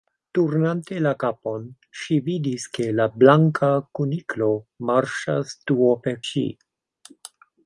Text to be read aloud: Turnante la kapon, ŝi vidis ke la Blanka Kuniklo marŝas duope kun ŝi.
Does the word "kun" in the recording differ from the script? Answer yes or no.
yes